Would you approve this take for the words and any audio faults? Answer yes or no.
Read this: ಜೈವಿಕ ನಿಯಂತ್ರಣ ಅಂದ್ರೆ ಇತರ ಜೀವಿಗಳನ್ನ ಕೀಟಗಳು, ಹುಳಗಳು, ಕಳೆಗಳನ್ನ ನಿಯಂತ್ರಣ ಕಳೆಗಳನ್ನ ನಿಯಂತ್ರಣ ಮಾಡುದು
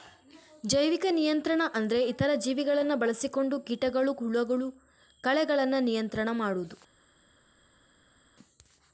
no